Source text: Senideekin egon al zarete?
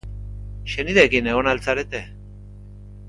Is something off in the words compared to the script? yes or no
no